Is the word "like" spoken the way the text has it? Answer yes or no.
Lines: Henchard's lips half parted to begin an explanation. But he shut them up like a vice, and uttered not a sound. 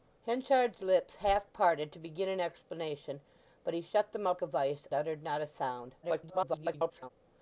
no